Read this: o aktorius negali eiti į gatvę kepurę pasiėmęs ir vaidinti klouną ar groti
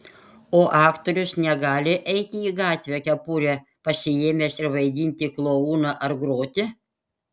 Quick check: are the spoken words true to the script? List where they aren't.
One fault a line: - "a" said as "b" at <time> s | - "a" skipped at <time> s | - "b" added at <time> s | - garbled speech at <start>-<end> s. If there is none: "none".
none